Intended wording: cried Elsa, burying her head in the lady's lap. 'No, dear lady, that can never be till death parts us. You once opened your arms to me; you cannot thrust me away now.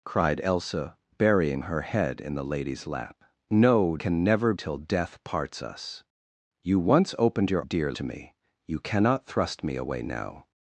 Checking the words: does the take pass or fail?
fail